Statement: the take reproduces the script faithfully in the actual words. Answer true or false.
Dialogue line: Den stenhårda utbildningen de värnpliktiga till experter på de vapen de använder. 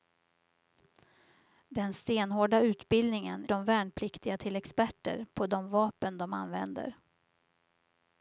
true